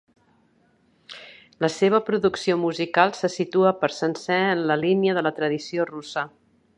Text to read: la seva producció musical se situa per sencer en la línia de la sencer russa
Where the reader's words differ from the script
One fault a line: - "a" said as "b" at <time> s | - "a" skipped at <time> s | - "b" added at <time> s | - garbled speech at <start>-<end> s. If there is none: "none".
- "sencer" said as "tradició" at 5.4 s